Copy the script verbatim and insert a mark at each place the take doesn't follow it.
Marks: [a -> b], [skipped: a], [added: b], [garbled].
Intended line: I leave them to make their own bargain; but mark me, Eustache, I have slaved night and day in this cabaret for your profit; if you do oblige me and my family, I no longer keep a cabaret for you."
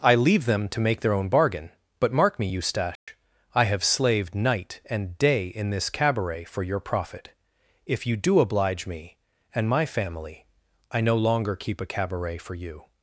I leave them to make their own bargain; but mark me, Eustache, I have slaved night and day in this cabaret for your profit; if you do oblige me and my family, I no longer keep a cabaret for you."